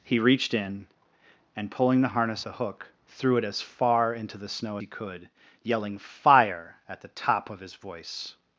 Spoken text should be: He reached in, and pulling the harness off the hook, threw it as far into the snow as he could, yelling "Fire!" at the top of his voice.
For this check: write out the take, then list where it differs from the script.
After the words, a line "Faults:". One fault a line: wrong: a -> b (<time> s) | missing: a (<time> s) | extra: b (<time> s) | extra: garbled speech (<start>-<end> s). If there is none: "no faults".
He reached in, and pulling the harness the hook, threw it as far into the snow he could, yelling "Fire!" at the top of his voice.
Faults:
missing: off (2.5 s)
missing: as (4.8 s)